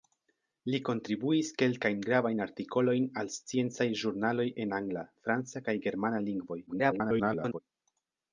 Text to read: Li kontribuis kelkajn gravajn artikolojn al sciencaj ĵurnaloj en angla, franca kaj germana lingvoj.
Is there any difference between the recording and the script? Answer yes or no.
yes